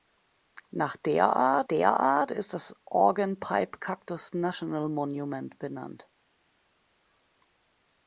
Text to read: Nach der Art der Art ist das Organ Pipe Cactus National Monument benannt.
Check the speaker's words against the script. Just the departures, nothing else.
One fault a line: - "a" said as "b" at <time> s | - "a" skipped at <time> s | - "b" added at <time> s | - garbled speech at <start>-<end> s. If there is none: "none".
none